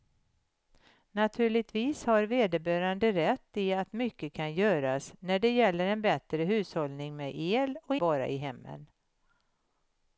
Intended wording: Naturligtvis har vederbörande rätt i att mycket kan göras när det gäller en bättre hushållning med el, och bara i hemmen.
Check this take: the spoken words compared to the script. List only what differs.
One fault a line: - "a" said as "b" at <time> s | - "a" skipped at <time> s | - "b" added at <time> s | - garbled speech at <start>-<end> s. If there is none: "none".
none